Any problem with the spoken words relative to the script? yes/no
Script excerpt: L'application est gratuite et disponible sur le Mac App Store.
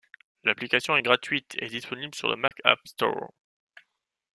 no